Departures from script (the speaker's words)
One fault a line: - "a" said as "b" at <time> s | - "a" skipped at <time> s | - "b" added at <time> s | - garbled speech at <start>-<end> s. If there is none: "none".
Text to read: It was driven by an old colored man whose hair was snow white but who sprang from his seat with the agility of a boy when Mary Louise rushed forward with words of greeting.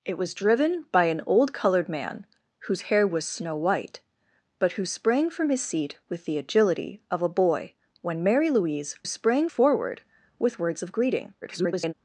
- "rushed" said as "sprang" at 9.0 s
- garbled speech at 11.4-11.9 s